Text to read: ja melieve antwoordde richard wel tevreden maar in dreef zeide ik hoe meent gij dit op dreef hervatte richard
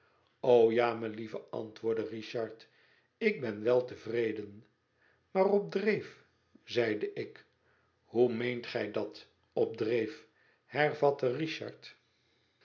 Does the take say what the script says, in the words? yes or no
no